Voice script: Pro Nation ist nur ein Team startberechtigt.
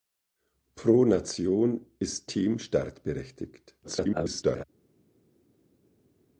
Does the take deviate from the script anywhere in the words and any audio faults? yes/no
yes